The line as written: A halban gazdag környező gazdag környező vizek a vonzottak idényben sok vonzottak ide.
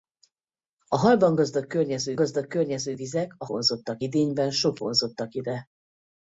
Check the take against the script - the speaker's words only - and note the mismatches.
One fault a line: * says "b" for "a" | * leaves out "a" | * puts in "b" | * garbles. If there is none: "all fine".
all fine